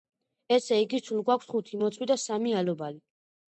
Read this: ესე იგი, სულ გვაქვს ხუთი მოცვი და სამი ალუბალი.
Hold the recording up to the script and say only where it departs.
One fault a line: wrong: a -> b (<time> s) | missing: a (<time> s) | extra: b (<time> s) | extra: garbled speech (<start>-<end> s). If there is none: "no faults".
no faults